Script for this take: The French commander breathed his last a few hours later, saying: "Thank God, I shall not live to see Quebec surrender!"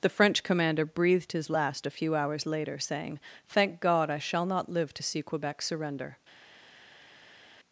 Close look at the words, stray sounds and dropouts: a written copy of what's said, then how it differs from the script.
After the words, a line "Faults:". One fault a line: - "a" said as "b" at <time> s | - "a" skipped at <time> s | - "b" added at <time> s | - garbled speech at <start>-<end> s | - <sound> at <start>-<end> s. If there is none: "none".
The French commander breathed his last a few hours later, saying: "Thank God, I shall not live to see Quebec surrender!"
Faults:
none